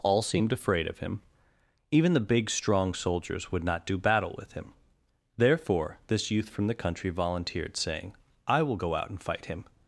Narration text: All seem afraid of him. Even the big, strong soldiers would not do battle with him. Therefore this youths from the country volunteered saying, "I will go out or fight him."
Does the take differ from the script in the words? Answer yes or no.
yes